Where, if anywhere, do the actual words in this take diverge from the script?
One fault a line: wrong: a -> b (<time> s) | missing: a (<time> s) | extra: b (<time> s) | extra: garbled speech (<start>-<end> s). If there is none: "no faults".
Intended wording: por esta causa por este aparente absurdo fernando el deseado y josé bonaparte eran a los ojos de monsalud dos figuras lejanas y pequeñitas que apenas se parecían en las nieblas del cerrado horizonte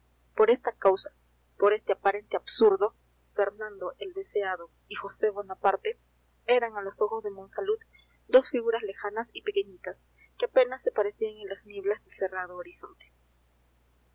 no faults